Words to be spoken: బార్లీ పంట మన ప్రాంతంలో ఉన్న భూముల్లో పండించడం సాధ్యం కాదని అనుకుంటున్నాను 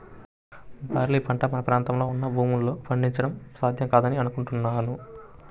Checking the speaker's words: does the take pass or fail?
pass